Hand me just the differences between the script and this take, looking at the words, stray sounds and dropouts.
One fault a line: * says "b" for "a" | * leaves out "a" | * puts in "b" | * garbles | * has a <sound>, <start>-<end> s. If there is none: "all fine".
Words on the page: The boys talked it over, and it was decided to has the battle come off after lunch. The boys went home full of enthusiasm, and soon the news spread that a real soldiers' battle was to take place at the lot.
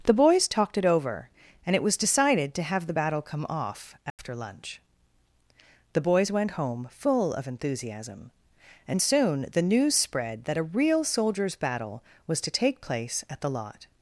* says "have" for "has"
* has a dropout, 4.1-4.2 s